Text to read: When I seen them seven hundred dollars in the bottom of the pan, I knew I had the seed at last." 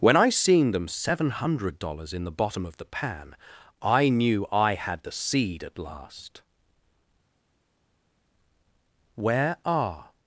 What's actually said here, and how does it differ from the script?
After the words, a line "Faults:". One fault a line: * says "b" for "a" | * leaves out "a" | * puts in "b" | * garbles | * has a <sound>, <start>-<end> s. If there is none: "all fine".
When I seen them seven hundred dollars in the bottom of the pan, I knew I had the seed at last." "Where are
Faults:
* puts in "Where are"